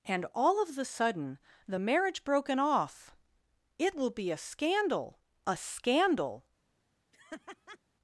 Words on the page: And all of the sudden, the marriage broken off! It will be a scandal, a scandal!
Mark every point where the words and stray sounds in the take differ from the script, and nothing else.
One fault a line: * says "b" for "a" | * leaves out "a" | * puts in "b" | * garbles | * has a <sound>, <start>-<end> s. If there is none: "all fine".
* has a laugh, 7.1-7.8 s